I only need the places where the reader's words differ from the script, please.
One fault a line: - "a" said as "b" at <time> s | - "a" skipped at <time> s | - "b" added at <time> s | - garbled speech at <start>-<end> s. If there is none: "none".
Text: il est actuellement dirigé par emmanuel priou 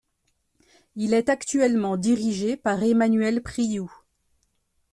none